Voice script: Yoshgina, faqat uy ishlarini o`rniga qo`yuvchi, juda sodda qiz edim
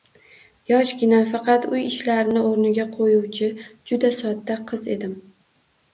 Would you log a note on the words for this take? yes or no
no